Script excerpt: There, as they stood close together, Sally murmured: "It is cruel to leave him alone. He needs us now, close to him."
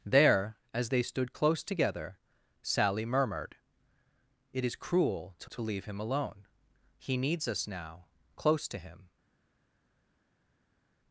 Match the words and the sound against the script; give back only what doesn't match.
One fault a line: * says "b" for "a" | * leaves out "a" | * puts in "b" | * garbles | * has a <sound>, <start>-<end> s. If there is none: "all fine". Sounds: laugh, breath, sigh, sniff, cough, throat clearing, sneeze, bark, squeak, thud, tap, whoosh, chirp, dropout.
* puts in "to"